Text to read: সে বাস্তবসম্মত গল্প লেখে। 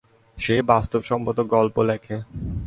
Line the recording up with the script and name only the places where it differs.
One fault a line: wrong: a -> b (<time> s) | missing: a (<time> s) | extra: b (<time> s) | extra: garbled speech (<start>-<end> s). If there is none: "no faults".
no faults